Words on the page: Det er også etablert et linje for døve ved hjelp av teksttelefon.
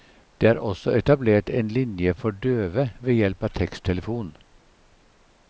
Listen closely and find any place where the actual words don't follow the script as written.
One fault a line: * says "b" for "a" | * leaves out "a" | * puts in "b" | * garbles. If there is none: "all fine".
* says "en" for "et"